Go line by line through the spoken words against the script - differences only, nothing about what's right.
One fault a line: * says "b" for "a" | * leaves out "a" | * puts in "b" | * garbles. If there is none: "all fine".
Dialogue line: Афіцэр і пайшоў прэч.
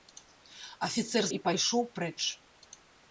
all fine